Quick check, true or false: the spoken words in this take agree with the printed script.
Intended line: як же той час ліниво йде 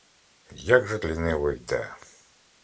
false